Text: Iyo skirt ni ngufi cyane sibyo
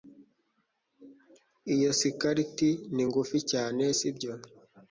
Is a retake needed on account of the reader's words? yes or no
no